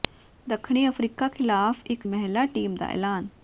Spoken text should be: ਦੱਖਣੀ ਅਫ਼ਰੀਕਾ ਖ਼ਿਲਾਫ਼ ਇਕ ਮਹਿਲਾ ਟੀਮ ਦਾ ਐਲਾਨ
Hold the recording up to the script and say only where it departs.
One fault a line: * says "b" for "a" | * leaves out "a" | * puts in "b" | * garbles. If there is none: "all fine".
all fine